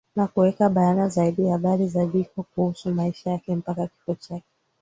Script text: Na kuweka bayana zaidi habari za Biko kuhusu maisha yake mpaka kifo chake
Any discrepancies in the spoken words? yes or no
no